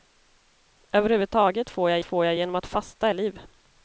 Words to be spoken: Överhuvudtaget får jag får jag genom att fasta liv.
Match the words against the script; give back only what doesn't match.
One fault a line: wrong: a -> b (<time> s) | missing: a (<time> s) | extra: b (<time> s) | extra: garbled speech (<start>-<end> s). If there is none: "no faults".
no faults